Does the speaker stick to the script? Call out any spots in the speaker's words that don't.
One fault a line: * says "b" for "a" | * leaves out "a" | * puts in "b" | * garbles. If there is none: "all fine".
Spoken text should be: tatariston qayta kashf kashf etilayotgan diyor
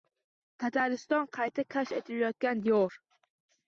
* leaves out "kashf"